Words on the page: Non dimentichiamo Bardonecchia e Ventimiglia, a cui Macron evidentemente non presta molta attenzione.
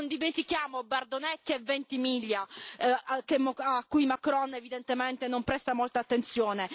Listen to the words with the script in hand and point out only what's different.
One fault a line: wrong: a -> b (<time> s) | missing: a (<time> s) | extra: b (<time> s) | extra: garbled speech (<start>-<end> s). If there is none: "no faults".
no faults